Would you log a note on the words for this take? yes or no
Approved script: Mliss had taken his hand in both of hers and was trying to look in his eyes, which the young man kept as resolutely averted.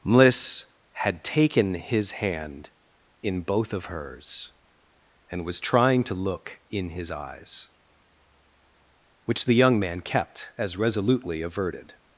no